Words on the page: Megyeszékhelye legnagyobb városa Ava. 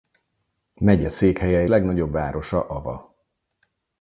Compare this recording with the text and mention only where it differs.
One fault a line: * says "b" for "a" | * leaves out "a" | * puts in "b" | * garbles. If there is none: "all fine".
all fine